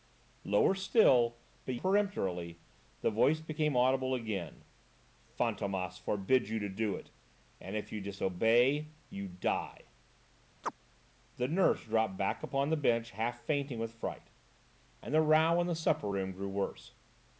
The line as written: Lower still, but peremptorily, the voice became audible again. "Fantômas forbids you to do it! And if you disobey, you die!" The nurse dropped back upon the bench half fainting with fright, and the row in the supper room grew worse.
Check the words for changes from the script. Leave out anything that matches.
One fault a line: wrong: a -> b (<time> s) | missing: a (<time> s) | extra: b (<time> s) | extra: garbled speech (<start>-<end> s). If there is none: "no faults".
no faults